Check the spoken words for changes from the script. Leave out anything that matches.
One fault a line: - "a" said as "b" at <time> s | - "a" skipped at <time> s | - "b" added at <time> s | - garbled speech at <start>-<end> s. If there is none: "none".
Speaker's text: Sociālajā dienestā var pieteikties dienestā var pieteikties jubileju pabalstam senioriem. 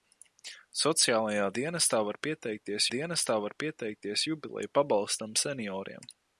none